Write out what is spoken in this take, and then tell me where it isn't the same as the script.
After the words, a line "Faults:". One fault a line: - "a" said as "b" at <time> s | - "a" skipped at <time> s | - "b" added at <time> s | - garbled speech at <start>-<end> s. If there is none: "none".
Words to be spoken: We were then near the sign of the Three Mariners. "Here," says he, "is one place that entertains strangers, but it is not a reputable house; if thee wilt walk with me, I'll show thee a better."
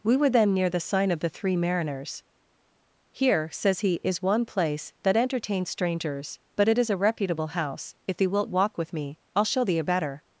We were then near the sign of the Three Mariners. "Here," says he, "is one place that entertains strangers, but it is a reputable house; if thee wilt walk with me, I'll show thee a better."
Faults:
- "not" skipped at 6.9 s